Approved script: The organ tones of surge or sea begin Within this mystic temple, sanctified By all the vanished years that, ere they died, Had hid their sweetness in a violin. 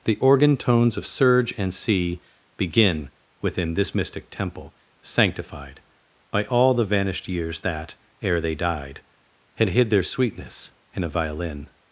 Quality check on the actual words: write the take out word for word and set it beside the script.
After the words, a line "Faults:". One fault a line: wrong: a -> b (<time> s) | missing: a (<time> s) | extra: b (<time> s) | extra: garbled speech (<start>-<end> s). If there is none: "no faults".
The organ tones of surge and sea begin Within this mystic temple, sanctified By all the vanished years that, ere they died, Had hid their sweetness in a violin.
Faults:
wrong: or -> and (1.6 s)